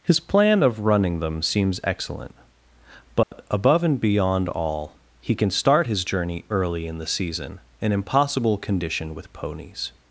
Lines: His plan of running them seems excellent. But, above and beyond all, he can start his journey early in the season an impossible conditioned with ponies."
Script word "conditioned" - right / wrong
wrong